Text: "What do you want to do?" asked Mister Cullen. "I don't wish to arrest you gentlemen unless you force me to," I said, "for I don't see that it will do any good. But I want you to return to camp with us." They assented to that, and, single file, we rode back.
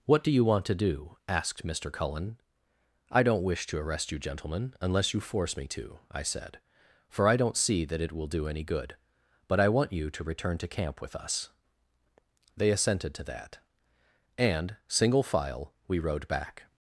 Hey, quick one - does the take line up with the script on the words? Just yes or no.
yes